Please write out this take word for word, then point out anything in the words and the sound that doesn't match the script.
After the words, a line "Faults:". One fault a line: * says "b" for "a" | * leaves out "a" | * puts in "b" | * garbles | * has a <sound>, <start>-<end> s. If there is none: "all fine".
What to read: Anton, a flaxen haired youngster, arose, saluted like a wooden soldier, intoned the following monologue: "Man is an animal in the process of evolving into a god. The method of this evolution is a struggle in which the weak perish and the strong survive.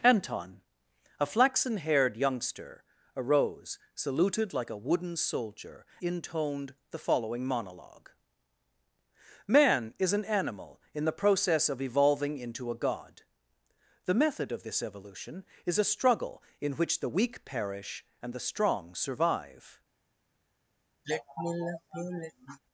Anton, a flaxen haired youngster, arose, saluted like a wooden soldier, intoned the following monologue: "Man is an animal in the process of evolving into a god. The method of this evolution is a struggle in which the weak perish and the strong survive.
Faults:
* has a sigh, 21.0-22.6 s